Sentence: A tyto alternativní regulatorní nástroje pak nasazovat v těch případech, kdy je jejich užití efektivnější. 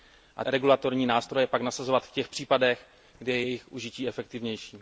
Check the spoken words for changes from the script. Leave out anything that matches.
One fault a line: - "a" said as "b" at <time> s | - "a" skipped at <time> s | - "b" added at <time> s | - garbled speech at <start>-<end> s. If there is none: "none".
- "tyto alternativní" skipped at 0.5 s